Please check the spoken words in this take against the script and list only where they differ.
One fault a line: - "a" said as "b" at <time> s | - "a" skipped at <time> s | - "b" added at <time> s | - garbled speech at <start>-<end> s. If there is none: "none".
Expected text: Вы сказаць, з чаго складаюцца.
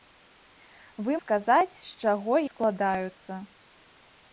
none